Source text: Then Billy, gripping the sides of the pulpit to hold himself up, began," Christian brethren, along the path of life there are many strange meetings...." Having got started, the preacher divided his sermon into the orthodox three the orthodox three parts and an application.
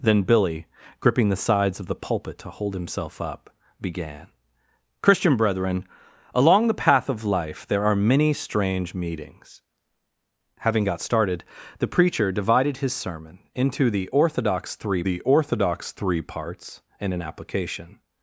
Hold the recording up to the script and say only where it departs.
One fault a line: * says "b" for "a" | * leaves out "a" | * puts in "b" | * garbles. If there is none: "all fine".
all fine